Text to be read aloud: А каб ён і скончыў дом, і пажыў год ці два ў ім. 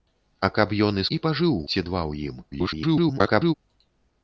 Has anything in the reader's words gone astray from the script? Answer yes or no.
yes